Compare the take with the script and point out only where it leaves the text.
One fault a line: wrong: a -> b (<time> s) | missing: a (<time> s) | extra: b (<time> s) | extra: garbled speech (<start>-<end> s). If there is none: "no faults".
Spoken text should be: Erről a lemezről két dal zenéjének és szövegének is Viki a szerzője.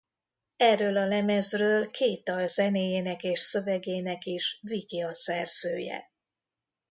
no faults